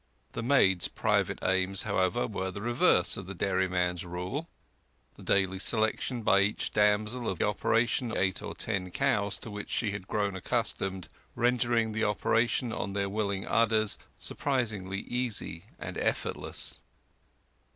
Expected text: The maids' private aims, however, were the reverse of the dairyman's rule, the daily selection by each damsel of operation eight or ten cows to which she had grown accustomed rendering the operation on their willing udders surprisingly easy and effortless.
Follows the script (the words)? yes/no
yes